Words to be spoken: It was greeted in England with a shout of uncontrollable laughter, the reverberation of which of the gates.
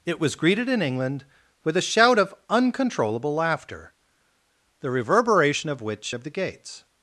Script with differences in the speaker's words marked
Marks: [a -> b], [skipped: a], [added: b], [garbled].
It was greeted in England with a shout of uncontrollable laughter, the reverberation of which of the gates.